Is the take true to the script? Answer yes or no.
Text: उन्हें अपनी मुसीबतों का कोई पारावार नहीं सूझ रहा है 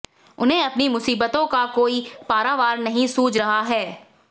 yes